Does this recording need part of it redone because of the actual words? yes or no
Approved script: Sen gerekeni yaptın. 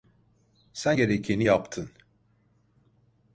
no